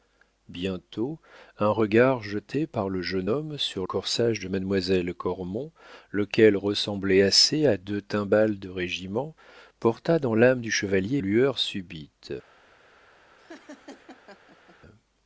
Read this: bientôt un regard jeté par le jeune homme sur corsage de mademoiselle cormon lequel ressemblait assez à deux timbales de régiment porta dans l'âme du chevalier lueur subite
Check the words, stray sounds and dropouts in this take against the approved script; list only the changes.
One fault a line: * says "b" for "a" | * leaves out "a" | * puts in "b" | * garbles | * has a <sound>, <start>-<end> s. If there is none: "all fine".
* has a laugh, 13.4-14.8 s